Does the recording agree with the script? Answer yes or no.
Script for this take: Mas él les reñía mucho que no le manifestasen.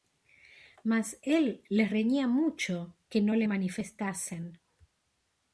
yes